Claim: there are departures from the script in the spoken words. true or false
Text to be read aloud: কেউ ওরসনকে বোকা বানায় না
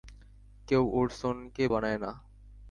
true